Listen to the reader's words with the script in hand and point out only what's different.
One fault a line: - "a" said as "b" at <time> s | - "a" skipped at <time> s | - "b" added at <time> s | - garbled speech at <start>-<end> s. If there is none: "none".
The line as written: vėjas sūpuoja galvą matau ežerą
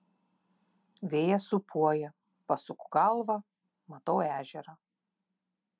- "pasuku" added at 2.5 s